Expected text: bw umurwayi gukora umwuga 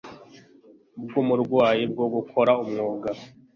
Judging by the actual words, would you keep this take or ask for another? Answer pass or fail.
fail